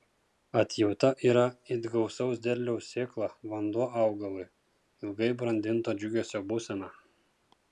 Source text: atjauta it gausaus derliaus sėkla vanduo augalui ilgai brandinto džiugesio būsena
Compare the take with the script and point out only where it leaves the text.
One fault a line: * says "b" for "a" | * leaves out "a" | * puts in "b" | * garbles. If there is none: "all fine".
* puts in "yra"